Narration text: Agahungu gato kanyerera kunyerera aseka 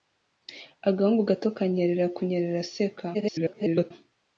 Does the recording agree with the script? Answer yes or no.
no